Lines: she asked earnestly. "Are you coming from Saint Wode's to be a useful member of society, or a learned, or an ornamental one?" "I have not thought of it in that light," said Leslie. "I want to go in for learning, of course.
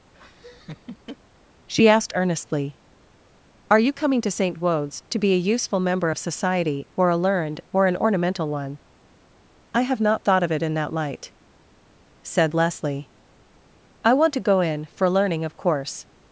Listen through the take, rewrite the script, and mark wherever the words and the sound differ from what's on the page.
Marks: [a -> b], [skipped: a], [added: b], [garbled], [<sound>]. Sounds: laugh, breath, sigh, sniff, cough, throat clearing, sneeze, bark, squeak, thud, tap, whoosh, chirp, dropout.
[laugh] she asked earnestly. "Are you coming [from -> to] Saint Wode's to be a useful member of society, or a learned, or an ornamental one?" "I have not thought of it in that light," said Leslie. "I want to go in for learning, of course.